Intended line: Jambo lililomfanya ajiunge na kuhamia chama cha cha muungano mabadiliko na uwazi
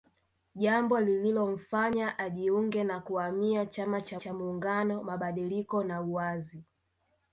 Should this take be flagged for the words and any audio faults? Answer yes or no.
no